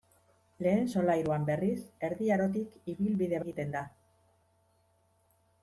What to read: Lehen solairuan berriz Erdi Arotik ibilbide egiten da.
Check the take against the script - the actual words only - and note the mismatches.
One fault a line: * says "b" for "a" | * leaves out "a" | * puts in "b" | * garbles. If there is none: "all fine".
all fine